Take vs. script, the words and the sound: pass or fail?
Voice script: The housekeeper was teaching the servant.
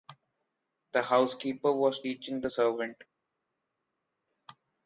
pass